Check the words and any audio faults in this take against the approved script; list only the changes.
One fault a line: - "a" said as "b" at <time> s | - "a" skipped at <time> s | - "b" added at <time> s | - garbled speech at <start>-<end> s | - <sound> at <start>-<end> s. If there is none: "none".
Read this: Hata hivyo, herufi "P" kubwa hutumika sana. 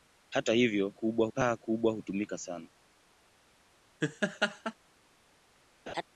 - "herufi" said as "kubwa" at 0.9 s
- laugh at 4.0-4.7 s
- laugh at 5.9-6.0 s